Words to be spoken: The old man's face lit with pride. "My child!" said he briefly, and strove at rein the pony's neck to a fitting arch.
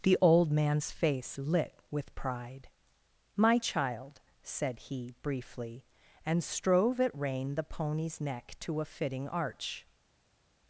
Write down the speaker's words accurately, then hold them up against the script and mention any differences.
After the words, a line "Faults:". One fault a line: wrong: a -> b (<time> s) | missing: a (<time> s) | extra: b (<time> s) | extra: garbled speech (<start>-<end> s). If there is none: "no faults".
The old man's face lit with pride. "My child!" said he briefly, and strove at rein the pony's neck to a fitting arch.
Faults:
no faults